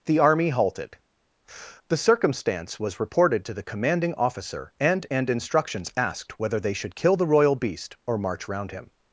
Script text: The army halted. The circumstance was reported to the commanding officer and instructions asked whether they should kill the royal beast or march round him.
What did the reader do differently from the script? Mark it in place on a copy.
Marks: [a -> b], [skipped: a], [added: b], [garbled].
The army halted. The circumstance was reported to the commanding officer and [added: and] instructions asked whether they should kill the royal beast or march round him.